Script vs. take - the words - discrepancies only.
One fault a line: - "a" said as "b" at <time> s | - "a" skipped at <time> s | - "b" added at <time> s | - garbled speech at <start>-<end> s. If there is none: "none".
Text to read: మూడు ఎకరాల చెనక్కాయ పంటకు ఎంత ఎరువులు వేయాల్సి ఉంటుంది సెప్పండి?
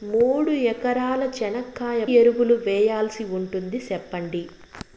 - "పంటకు ఎంత" skipped at 2.0 s